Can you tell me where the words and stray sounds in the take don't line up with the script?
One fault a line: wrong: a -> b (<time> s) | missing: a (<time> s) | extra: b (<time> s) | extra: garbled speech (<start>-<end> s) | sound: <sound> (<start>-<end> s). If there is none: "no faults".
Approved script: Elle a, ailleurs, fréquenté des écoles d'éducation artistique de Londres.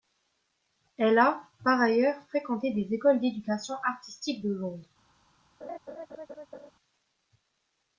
extra: par (1.6 s)
sound: laugh (5.6-6.7 s)